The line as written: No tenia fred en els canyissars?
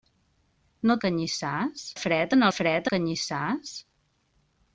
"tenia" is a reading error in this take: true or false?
true